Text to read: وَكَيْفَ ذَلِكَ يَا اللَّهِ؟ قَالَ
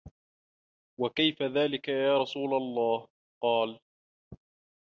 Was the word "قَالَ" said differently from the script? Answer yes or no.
no